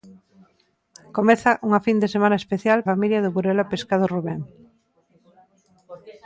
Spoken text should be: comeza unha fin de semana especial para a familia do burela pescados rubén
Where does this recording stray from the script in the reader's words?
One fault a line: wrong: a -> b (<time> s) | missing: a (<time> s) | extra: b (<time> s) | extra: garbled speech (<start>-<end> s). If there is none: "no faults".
missing: para a (2.8 s)